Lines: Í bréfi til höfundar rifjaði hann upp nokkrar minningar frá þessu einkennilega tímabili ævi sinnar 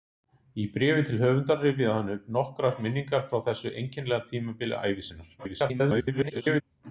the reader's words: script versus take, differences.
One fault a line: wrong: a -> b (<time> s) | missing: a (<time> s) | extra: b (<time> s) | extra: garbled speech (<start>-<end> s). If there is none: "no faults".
extra: garbled speech (5.4-6.6 s)